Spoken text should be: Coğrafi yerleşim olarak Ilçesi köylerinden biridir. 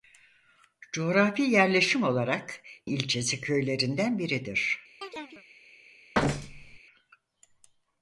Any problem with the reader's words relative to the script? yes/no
no